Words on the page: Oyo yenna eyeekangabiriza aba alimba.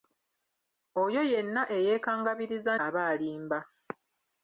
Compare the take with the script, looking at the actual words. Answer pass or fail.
pass